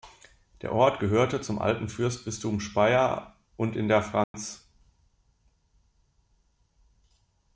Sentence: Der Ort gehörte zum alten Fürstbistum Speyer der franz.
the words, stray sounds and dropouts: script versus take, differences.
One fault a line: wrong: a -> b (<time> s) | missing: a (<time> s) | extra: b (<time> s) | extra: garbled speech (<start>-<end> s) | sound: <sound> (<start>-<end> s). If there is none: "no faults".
extra: und in (3.5 s)
sound: dropout (4.2-4.3 s)